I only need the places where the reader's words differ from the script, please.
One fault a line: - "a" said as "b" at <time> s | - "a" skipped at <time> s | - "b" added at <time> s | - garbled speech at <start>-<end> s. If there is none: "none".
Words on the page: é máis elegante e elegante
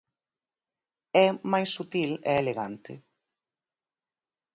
- "elegante" said as "sutil" at 1.7 s